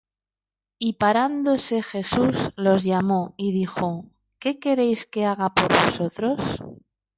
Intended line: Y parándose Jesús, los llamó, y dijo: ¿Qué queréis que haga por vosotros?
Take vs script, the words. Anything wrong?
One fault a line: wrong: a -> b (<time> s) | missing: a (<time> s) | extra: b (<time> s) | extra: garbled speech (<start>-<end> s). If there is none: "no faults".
no faults